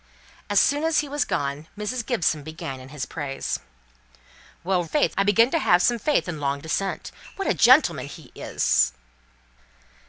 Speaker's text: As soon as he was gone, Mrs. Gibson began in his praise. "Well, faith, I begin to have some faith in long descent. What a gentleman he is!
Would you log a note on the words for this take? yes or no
no